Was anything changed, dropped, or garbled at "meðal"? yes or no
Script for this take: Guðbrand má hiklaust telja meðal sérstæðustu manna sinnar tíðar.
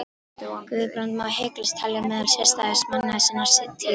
no